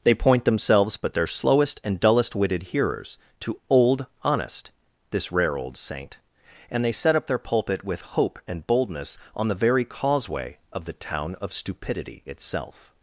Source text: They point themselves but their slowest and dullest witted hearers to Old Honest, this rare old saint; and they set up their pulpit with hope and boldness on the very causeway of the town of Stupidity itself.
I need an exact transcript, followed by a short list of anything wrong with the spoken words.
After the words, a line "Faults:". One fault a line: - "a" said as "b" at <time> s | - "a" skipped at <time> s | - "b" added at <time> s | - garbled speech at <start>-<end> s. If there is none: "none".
They point themselves but their slowest and dullest witted hearers to Old Honest, this rare old saint; and they set up their pulpit with hope and boldness on the very causeway of the town of Stupidity itself.
Faults:
none